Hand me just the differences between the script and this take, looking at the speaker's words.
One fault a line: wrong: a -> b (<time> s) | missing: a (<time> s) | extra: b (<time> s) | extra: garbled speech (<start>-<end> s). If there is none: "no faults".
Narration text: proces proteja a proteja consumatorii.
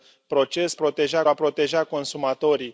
no faults